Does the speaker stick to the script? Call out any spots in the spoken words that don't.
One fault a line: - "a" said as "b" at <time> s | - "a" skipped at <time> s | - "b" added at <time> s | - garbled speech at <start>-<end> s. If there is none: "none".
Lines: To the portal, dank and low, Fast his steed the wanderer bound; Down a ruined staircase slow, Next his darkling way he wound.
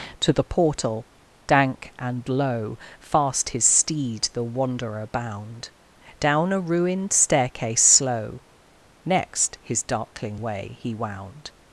none